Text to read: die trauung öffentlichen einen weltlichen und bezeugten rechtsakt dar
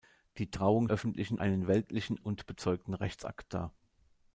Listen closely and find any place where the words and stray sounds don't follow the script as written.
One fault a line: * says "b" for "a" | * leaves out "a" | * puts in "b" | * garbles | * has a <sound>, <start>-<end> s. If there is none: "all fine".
all fine